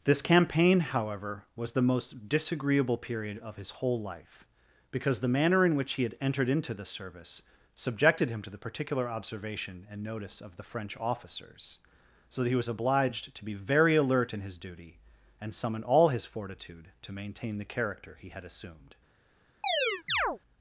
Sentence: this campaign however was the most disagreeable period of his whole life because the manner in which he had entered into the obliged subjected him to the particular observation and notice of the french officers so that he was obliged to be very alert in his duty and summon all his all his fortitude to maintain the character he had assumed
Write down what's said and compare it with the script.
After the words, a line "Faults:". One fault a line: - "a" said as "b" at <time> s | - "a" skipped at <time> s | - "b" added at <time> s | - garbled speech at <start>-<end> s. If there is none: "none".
this campaign however was the most disagreeable period of his whole life because the manner in which he had entered into the service subjected him to the particular observation and notice of the french officers so that he was obliged to be very alert in his duty and summon all his fortitude to maintain the character he had assumed
Faults:
- "obliged" said as "service" at 6.8 s
- "all his" skipped at 16.2 s